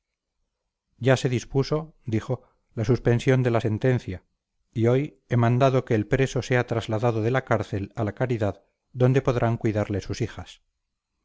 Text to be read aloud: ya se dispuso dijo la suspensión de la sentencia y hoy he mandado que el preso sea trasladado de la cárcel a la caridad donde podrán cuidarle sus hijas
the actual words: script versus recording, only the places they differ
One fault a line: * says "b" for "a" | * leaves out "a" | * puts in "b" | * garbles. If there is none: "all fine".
all fine